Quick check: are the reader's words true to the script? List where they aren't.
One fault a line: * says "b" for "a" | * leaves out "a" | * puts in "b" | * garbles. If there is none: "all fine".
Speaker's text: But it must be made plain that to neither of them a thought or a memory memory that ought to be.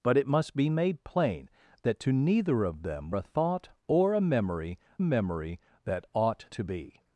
all fine